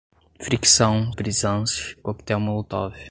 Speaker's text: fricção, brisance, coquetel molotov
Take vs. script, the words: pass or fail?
pass